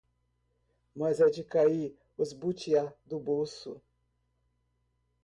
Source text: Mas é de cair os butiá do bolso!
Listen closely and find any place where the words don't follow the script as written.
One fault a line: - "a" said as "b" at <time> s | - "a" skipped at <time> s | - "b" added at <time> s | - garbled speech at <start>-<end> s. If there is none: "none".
none